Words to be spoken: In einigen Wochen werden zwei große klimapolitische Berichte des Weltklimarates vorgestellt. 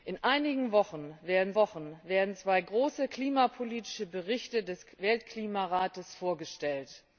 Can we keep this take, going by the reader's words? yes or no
no